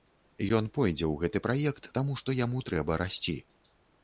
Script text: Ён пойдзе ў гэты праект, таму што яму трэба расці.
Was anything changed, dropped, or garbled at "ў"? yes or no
no